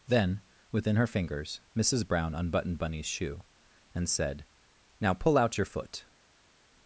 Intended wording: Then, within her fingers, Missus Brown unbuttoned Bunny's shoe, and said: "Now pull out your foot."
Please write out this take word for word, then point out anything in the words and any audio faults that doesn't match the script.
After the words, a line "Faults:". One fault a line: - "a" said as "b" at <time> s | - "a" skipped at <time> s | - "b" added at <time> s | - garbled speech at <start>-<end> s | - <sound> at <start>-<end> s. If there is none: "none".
Then, within her fingers, Missus Brown unbuttoned Bunny's shoe, and said: "Now pull out your foot."
Faults:
none